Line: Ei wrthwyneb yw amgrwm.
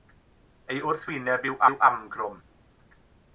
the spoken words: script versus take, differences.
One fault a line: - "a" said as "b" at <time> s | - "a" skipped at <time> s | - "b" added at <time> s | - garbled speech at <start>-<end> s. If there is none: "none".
- "yw" added at 1.7 s